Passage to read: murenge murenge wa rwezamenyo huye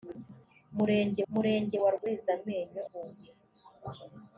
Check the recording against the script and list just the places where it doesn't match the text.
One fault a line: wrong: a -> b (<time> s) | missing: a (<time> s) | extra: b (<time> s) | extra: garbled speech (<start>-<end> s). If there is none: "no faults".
no faults